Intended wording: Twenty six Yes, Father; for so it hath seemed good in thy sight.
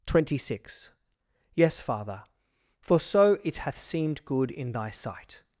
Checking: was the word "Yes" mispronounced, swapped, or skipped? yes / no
no